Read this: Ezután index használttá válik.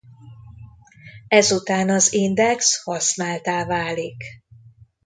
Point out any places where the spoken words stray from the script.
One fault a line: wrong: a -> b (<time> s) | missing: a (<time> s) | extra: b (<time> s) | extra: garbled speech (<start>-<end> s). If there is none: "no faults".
extra: az (1.9 s)